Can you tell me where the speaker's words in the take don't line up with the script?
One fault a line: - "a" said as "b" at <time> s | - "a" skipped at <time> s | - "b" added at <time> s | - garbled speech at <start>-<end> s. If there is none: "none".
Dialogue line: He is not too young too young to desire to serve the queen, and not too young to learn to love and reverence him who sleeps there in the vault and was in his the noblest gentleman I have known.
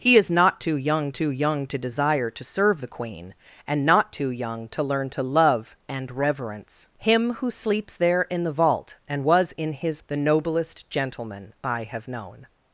none